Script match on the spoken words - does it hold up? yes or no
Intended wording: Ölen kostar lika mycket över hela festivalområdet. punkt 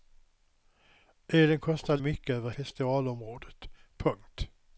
no